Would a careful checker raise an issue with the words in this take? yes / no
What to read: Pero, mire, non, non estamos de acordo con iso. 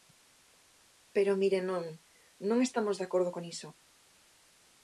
no